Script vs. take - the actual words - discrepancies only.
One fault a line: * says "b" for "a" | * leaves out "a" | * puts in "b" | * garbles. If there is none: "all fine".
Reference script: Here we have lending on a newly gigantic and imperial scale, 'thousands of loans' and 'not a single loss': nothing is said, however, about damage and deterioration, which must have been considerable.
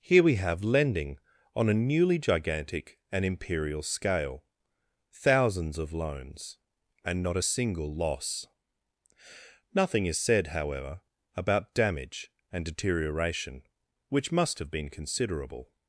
all fine